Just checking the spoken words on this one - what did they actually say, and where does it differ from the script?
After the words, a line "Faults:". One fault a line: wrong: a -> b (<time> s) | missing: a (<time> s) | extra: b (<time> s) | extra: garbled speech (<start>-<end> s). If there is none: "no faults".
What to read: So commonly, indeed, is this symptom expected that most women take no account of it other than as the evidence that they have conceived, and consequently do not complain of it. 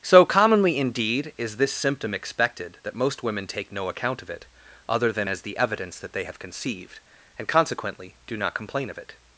So commonly, indeed, is this symptom expected that most women take no account of it other than as the evidence that they have conceived, and consequently do not complain of it.
Faults:
no faults